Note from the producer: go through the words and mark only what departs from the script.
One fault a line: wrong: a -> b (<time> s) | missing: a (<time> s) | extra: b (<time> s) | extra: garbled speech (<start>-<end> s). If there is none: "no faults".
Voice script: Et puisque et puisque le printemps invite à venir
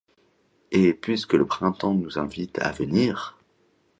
missing: et puisque (1.3 s)
extra: nous (1.9 s)